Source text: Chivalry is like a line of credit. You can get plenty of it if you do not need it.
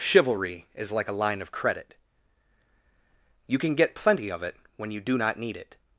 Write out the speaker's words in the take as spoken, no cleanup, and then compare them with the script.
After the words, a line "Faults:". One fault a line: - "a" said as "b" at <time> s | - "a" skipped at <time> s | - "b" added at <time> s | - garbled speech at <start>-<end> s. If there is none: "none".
Chivalry is like a line of credit. You can get plenty of it when you do not need it.
Faults:
- "if" said as "when" at 4.8 s